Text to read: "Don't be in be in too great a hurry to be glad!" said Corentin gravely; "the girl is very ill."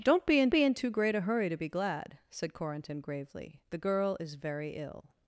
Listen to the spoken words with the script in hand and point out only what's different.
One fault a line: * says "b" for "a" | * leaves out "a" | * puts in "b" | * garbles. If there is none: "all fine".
all fine